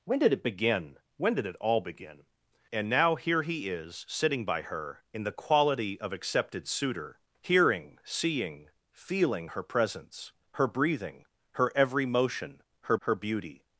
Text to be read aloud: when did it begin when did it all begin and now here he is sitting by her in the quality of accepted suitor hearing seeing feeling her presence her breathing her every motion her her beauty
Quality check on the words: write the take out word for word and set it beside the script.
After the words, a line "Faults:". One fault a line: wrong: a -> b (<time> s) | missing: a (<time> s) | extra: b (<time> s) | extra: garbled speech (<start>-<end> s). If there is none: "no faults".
when did it begin when did it all begin and now here he is sitting by her in the quality of accepted suitor hearing seeing feeling her presence her breathing her every motion her her beauty
Faults:
no faults